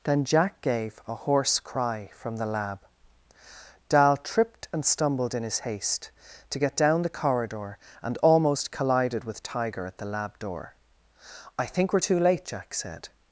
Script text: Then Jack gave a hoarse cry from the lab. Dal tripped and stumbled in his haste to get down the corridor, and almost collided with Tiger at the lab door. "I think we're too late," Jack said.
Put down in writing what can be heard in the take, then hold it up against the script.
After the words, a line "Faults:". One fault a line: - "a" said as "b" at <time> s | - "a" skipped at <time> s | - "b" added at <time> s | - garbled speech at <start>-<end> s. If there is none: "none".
Then Jack gave a hoarse cry from the lab. Dal tripped and stumbled in his haste to get down the corridor, and almost collided with Tiger at the lab door. "I think we're too late," Jack said.
Faults:
none